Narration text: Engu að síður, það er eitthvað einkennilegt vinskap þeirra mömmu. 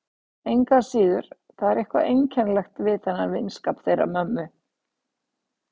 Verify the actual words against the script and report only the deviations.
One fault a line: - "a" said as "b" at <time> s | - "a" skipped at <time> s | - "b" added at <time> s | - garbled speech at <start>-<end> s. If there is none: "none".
- "við þennan" added at 2.9 s